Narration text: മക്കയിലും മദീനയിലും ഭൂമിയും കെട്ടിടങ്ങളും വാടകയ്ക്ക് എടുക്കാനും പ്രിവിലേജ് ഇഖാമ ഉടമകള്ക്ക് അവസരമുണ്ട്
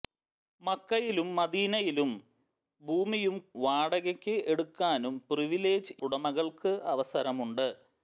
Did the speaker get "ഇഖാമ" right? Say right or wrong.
wrong